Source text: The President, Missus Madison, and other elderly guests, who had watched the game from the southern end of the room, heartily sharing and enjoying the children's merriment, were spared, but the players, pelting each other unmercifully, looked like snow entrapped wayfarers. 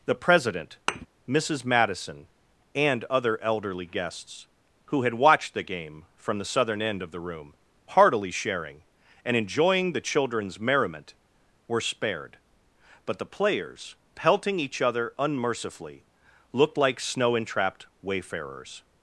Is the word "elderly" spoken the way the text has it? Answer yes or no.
yes